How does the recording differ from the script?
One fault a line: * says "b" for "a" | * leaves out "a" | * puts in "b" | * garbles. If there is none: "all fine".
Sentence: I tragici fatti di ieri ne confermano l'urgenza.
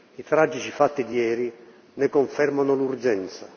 all fine